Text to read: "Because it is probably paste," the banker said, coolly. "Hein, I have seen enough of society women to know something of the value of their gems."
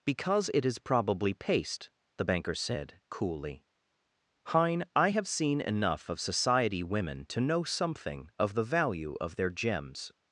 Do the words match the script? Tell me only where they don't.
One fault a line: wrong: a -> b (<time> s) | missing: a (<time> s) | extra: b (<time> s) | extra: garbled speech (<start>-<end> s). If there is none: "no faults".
no faults